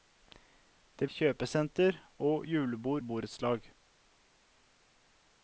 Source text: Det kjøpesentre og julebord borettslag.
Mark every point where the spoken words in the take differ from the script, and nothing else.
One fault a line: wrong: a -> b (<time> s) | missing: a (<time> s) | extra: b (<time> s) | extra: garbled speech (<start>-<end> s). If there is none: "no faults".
no faults